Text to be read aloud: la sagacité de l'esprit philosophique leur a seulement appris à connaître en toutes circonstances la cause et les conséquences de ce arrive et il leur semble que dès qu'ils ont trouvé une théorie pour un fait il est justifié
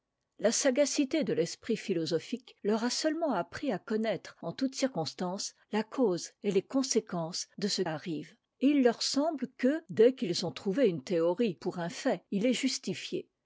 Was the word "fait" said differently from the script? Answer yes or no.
no